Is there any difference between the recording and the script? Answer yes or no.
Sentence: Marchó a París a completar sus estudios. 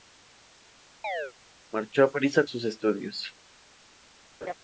yes